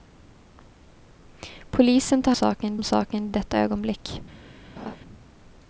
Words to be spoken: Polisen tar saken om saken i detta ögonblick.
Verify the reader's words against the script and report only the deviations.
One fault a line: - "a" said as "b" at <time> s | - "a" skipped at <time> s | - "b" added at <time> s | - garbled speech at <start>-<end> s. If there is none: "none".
none